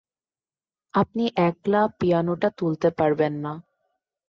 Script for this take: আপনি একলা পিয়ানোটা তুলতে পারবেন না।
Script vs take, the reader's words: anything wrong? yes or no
no